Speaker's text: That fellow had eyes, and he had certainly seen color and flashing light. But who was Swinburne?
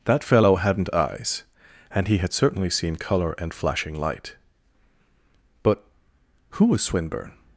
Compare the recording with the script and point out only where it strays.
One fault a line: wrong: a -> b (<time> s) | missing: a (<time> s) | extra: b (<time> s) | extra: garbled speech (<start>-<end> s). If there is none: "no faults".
wrong: had -> hadn't (0.6 s)